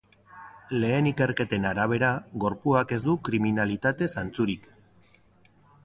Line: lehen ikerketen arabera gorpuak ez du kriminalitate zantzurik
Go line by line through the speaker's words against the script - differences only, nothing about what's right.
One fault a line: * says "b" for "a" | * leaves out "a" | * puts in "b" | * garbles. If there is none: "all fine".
all fine